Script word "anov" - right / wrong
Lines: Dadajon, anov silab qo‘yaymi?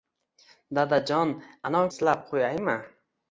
right